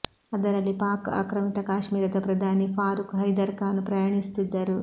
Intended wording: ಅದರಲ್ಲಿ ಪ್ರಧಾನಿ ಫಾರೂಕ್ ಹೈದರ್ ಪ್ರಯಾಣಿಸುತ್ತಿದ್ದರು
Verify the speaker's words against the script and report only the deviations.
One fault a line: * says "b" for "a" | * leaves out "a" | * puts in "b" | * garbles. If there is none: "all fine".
* puts in "ಪಾಕ್ ಆಕ್ರಮಿತ ಕಾಶ್ಮೀರದ"
* puts in "ಖಾನ್"